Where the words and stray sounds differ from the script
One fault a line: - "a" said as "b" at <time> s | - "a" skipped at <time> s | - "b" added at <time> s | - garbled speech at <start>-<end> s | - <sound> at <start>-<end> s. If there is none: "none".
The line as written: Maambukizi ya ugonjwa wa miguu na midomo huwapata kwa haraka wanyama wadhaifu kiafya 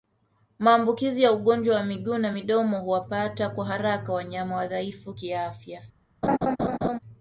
- laugh at 6.2-7.0 s